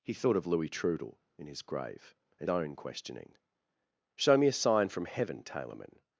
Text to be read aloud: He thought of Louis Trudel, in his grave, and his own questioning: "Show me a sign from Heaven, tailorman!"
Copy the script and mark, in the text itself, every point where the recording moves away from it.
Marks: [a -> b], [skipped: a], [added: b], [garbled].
He thought of Louis Trudel, in his grave, and [skipped: his] own questioning: "Show me a sign from Heaven, tailorman!"